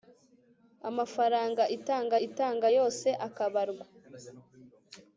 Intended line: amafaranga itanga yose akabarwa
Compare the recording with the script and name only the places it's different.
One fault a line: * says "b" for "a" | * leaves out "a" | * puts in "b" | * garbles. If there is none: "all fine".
* puts in "itanga"